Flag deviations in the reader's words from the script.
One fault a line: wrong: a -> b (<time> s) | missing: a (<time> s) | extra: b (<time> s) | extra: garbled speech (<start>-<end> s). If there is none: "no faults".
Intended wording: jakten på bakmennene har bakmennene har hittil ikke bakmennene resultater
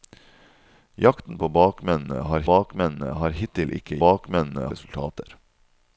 no faults